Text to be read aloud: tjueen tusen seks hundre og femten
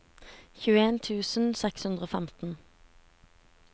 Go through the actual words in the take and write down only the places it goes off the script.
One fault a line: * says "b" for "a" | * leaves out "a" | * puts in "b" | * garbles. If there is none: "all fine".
all fine